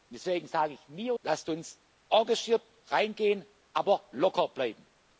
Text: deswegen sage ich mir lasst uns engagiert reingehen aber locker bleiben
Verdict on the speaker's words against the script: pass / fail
pass